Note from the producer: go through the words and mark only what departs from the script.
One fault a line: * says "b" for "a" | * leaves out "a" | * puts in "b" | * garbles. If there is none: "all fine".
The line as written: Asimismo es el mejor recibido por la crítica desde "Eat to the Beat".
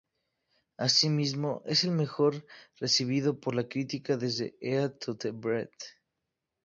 all fine